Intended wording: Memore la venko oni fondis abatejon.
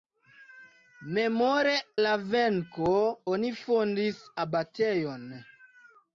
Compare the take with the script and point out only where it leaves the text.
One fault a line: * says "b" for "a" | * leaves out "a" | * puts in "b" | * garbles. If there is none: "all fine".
all fine